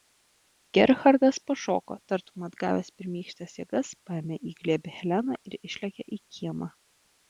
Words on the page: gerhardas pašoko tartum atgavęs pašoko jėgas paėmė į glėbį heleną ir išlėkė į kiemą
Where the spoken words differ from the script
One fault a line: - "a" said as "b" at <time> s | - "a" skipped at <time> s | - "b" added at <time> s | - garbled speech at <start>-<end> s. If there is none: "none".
- "pašoko" said as "pirmykštes" at 3.0 s